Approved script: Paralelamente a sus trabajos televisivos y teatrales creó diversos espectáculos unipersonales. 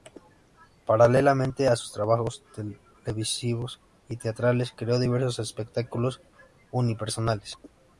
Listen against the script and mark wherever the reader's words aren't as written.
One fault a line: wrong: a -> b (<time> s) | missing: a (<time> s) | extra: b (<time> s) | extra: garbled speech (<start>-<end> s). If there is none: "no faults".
no faults